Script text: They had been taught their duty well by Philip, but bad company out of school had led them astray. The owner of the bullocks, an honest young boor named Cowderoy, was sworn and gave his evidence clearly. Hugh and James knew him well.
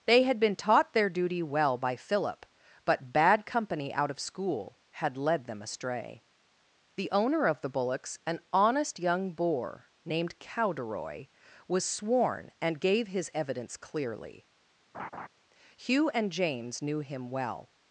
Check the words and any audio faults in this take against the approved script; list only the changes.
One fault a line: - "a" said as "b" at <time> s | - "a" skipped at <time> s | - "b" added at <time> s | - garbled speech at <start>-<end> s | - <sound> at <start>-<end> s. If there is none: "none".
- laugh at 14.9-15.3 s